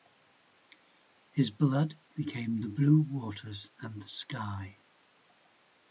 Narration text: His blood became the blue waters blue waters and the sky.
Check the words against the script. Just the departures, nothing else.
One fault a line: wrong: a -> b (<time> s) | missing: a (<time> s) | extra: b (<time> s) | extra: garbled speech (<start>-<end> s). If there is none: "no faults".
missing: blue waters (3.7 s)